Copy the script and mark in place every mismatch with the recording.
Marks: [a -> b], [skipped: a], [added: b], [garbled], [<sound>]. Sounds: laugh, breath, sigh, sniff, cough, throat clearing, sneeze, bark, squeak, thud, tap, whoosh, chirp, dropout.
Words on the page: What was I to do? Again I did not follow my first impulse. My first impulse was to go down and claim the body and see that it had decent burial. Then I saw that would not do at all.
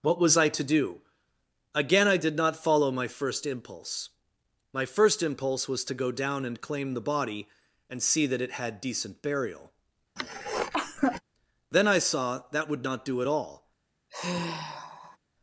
What was I to do? Again I did not follow my first impulse. My first impulse was to go down and claim the body and see that it had decent burial. [cough] Then I saw that would not do at all. [sigh]